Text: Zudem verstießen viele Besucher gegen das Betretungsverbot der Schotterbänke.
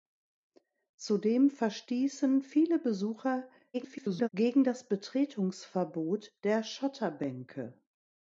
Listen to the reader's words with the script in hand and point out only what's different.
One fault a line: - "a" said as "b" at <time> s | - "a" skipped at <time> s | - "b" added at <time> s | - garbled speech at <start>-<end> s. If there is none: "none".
- garbled speech at 3.7-4.3 s